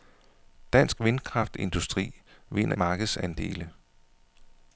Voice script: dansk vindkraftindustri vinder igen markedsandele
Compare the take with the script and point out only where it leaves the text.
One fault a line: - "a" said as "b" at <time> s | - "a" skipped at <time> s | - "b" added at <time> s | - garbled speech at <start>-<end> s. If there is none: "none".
- "igen" skipped at 2.8 s